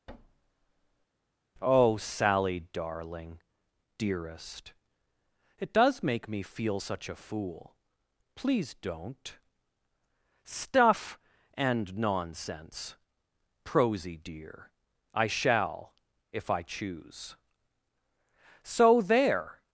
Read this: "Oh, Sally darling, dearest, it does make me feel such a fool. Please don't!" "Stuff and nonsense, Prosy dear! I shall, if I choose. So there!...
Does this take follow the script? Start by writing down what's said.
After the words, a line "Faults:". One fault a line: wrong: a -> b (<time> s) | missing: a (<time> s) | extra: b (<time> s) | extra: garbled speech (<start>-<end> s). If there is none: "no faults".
"Oh, Sally darling, dearest, it does make me feel such a fool. Please don't!" "Stuff and nonsense, Prosy dear! I shall, if I choose. So there!...
Faults:
no faults